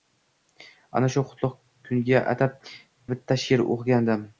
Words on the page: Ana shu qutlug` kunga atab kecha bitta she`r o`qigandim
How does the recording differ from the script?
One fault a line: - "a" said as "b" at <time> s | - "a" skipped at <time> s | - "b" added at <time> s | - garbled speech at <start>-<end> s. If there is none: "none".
- "kecha" skipped at 2.6 s